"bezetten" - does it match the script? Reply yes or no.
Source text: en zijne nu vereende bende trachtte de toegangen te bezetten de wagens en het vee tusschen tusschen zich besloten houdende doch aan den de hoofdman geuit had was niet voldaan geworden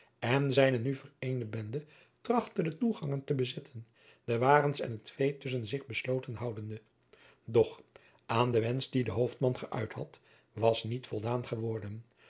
yes